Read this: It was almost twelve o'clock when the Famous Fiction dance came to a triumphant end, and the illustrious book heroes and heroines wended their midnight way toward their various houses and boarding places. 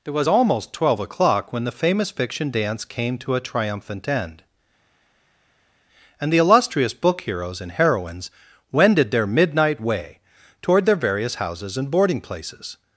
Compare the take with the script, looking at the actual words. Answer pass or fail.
pass